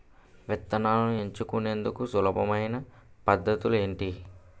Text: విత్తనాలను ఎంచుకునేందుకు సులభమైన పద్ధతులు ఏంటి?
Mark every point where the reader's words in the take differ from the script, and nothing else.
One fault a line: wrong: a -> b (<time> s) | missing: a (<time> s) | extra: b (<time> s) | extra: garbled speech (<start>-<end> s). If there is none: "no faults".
no faults